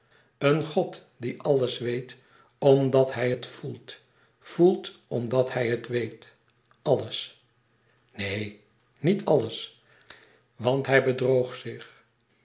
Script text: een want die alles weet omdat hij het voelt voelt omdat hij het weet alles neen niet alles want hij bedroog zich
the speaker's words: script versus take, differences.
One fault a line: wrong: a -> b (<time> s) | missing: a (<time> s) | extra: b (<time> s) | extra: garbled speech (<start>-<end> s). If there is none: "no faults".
wrong: want -> god (0.7 s)